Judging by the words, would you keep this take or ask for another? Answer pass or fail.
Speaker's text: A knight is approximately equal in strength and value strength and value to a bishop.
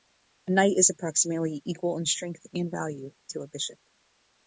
fail